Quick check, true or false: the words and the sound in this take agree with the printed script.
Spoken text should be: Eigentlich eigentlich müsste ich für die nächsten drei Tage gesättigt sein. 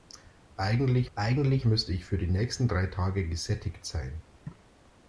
true